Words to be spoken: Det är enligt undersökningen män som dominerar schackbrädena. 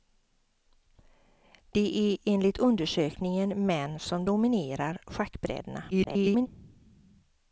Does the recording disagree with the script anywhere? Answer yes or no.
yes